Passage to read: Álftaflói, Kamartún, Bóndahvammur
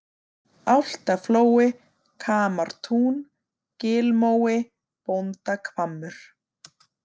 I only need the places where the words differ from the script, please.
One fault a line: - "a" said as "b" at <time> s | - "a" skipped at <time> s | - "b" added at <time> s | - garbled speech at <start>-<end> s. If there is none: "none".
- "Gilmói" added at 3.8 s